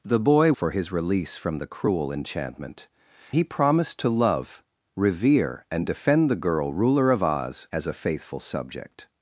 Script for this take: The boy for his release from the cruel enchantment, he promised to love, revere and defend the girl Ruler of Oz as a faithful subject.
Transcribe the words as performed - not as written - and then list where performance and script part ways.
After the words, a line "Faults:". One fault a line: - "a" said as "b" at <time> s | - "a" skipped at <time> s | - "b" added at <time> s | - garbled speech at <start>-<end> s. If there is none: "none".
The boy for his release from the cruel enchantment, he promised to love, revere and defend the girl Ruler of Oz as a faithful subject.
Faults:
none